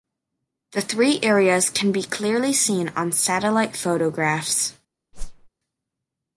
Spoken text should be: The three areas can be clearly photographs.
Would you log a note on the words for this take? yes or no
yes